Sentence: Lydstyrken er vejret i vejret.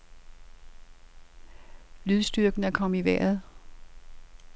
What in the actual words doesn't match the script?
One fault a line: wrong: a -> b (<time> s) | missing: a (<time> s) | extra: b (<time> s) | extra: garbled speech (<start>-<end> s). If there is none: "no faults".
wrong: vejret -> kommet (2.7 s)